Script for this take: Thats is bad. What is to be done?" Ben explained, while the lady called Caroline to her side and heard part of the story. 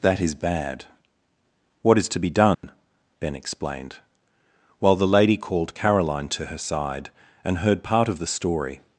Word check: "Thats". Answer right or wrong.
wrong